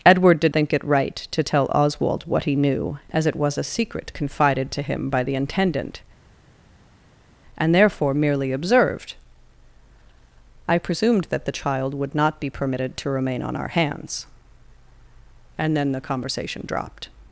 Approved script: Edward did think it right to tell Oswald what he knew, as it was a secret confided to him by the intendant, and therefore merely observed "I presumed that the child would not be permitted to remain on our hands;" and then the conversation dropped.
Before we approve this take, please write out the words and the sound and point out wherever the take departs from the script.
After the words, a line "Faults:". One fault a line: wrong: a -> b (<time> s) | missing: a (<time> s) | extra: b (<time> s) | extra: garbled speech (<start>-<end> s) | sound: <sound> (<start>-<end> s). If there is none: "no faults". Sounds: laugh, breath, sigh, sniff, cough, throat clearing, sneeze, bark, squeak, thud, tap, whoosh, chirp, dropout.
Edward did think it right to tell Oswald what he knew, as it was a secret confided to him by the intendant, and therefore merely observed "I presumed that the child would not be permitted to remain on our hands;" and then the conversation dropped.
Faults:
no faults